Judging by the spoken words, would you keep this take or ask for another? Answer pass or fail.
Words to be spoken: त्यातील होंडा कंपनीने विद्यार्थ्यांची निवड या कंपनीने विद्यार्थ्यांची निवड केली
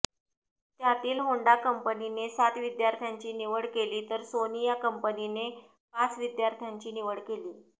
fail